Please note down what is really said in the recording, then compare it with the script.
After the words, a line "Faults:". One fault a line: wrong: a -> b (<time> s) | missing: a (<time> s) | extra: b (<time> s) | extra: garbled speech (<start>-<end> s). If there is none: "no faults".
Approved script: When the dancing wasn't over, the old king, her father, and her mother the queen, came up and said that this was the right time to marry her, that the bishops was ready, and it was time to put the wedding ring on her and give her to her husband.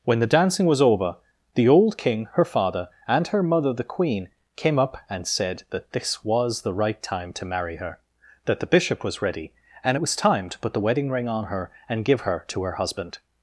When the dancing was over, the old king, her father, and her mother the queen, came up and said that this was the right time to marry her, that the bishop was ready, and it was time to put the wedding ring on her and give her to her husband.
Faults:
wrong: wasn't -> was (0.7 s)
wrong: bishops -> bishop (8.7 s)